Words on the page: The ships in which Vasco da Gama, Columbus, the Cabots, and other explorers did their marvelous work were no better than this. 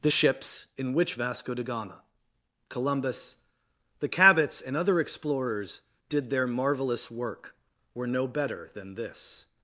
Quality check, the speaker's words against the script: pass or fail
pass